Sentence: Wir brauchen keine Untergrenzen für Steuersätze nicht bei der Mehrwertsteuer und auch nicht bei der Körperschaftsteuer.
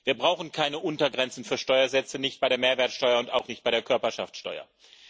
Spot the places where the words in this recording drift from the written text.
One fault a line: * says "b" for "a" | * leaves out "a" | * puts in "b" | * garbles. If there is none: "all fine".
all fine